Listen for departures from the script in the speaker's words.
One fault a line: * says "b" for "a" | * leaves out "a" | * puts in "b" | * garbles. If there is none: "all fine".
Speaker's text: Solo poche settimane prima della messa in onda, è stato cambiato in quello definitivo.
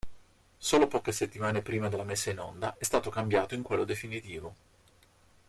all fine